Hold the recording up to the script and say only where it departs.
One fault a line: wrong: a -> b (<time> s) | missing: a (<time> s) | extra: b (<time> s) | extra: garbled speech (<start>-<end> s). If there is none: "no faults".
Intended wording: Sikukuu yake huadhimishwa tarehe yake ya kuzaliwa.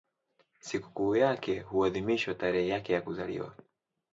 no faults